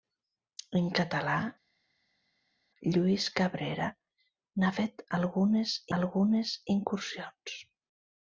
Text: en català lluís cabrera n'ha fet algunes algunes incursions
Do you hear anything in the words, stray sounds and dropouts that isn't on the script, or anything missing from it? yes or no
no